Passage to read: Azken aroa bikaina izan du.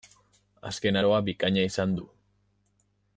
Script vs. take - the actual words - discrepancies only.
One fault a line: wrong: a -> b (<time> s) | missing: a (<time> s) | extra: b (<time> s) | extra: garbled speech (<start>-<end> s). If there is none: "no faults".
no faults